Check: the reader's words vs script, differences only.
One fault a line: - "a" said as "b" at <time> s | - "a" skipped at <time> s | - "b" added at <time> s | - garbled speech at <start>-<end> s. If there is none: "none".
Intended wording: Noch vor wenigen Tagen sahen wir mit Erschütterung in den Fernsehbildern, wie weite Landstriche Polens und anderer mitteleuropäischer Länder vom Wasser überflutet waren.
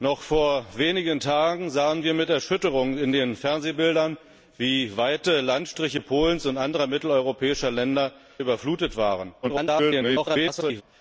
- "vom Wasser" skipped at 8.1 s
- garbled speech at 9.4-10.8 s